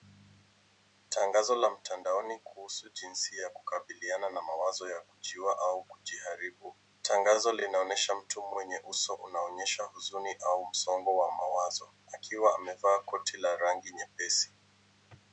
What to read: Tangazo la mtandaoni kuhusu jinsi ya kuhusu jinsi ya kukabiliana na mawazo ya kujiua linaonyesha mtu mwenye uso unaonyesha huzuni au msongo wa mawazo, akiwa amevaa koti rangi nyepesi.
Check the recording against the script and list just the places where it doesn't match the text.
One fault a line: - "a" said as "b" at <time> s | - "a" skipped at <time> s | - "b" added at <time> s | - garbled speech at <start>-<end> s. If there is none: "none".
- "kuhusu jinsi ya" skipped at 3.5 s
- "au kujiharibu Tangazo" added at 5.6 s
- "la" added at 13.4 s